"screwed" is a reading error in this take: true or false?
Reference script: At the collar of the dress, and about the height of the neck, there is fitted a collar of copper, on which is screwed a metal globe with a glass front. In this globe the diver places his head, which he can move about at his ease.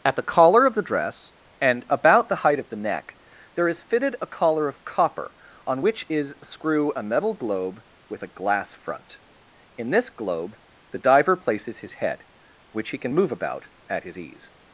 true